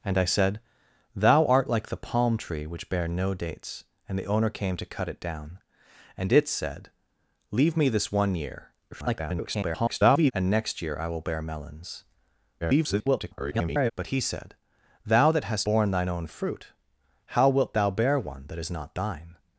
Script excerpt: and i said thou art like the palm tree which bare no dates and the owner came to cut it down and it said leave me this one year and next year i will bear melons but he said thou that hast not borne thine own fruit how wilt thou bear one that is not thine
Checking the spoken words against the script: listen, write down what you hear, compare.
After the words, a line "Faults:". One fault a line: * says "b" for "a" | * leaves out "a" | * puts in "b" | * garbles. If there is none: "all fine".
and i said thou art like the palm tree which bare no dates and the owner came to cut it down and it said leave me this one year [garbled] and next year i will bear melons [garbled] but he said thou that hast borne thine own fruit how wilt thou bear one that is not thine
Faults:
* garbles
* garbles
* leaves out "not"